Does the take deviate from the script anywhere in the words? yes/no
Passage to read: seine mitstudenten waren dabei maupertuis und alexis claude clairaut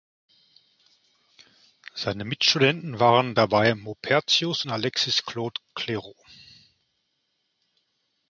no